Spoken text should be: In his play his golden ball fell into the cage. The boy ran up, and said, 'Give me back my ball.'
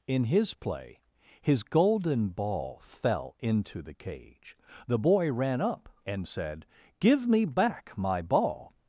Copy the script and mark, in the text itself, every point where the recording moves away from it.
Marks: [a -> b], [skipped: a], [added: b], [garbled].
In his play his golden ball fell into the cage. The boy ran up, and said, 'Give me back my ball.'